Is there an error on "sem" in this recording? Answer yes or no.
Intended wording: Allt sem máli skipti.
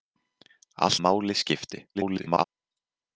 yes